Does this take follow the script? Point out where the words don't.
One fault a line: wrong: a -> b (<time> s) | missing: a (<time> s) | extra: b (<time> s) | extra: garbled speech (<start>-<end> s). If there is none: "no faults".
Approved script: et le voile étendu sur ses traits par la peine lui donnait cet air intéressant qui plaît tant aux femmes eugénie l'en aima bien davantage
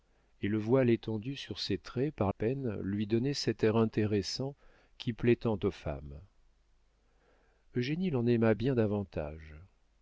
missing: la (2.3 s)